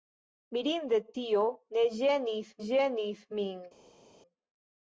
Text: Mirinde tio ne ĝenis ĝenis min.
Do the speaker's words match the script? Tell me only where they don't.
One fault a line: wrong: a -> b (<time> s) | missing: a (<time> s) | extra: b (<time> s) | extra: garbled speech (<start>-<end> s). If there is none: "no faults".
no faults